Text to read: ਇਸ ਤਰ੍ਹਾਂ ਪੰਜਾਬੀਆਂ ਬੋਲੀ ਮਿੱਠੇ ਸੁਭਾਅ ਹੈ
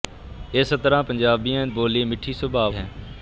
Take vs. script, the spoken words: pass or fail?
pass